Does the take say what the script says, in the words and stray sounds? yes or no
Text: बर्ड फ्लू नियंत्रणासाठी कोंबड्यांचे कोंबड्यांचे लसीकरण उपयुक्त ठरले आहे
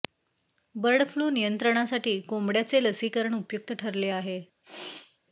no